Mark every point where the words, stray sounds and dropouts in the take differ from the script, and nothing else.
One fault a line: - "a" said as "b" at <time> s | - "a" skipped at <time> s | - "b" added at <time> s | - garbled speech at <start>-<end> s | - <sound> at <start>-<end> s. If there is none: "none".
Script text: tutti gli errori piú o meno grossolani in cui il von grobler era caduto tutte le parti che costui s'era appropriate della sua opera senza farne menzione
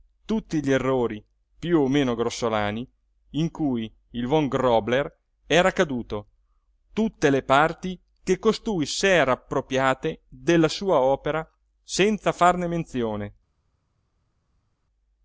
none